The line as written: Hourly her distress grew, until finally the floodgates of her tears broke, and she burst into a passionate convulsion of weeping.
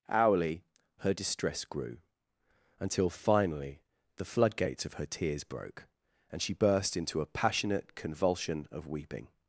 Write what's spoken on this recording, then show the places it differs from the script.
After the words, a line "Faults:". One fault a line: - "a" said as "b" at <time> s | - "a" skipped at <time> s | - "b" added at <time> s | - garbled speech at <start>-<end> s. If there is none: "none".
Hourly her distress grew, until finally the floodgates of her tears broke, and she burst into a passionate convulsion of weeping.
Faults:
none